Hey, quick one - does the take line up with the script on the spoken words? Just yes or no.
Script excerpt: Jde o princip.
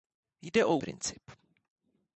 yes